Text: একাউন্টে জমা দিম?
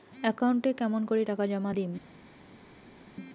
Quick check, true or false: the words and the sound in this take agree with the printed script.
false